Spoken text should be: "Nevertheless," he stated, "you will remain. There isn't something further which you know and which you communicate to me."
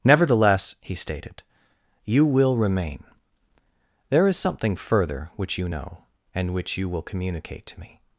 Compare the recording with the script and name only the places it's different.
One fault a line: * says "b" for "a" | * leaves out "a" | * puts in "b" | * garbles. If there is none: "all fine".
* says "is" for "isn't"
* puts in "will"